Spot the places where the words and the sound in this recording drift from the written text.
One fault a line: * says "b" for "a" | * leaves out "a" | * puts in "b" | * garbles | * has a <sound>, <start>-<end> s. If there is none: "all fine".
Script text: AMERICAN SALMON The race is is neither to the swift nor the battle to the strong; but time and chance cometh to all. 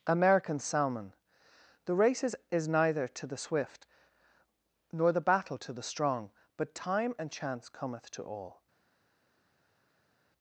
all fine